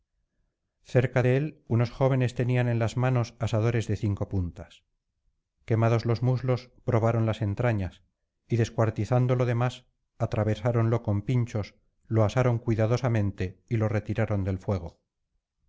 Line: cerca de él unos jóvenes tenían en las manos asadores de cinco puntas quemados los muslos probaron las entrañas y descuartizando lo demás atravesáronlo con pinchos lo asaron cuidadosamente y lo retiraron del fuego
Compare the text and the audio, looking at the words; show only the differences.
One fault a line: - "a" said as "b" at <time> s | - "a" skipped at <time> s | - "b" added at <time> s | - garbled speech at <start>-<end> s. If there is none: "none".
none